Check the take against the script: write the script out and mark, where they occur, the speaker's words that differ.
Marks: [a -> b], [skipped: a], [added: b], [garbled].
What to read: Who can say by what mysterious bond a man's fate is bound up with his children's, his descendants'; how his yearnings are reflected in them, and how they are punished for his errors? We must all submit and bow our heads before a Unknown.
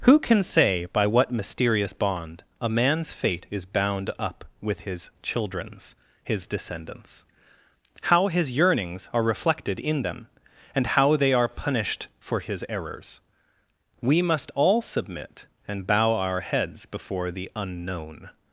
Who can say by what mysterious bond a man's fate is bound up with his children's, his descendants'; how his yearnings are reflected in them, and how they are punished for his errors? We must all submit and bow our heads before [a -> the] Unknown.